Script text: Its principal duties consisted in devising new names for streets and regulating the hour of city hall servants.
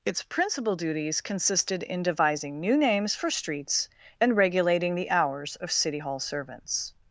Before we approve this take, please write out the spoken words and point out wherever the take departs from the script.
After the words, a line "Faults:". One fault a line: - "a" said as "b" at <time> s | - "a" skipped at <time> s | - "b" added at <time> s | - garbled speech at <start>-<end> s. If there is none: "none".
Its principal duties consisted in devising new names for streets and regulating the hours of city hall servants.
Faults:
- "hour" said as "hours" at 5.1 s